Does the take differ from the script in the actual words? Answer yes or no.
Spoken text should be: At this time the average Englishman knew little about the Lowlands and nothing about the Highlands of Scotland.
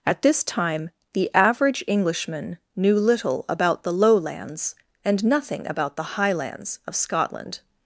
no